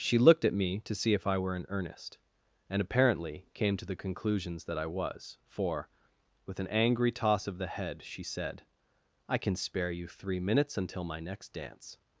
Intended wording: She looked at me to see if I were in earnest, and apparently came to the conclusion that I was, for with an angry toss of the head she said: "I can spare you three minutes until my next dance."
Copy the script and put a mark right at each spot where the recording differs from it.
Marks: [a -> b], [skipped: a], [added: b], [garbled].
She looked at me to see if I were in earnest, and apparently came to the [conclusion -> conclusions] that I was, for with an angry toss of the head she said: "I can spare you three minutes until my next dance."